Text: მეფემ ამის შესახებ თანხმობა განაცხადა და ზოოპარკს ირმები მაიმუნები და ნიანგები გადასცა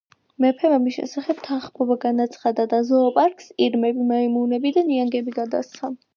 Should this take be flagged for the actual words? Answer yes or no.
no